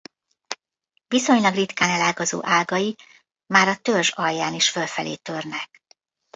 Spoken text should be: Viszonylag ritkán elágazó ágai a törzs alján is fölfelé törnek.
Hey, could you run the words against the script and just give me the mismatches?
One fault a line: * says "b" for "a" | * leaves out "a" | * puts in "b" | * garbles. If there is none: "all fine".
* puts in "már"